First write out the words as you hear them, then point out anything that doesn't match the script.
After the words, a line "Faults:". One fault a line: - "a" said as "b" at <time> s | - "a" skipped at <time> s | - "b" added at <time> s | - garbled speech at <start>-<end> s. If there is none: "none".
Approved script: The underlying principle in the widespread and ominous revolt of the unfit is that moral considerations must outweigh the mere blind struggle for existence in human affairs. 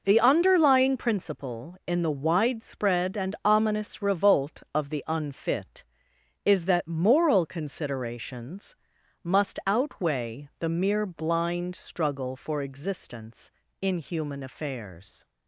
The underlying principle in the widespread and ominous revolt of the unfit is that moral considerations must outweigh the mere blind struggle for existence in human affairs.
Faults:
none